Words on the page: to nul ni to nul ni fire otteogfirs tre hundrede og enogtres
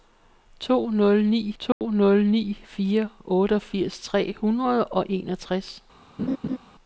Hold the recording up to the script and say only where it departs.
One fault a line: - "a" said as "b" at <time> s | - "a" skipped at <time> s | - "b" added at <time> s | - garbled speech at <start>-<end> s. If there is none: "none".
none